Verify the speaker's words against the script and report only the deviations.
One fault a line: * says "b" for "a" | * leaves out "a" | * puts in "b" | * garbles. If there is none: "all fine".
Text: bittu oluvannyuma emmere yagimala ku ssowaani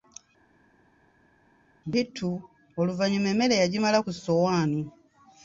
all fine